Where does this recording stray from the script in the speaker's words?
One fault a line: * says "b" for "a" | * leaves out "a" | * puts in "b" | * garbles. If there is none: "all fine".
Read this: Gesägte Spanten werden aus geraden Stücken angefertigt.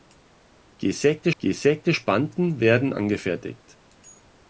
* puts in "gesägte"
* leaves out "aus geraden Stücken"